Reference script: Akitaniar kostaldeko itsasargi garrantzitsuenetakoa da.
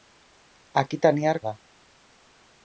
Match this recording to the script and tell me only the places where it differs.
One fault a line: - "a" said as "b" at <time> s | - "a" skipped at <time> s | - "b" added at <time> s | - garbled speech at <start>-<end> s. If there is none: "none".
- "kostaldeko itsasargi garrantzitsuenetakoa" skipped at 1.4 s